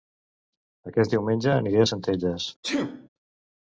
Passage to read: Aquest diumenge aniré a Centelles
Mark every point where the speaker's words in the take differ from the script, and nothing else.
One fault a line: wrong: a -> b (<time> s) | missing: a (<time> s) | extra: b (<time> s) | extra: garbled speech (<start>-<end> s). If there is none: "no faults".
no faults